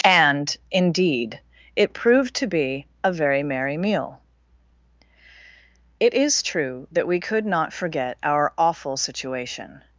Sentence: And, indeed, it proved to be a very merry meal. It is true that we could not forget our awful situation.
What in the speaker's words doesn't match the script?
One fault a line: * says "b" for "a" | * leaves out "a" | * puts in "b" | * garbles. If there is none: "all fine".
all fine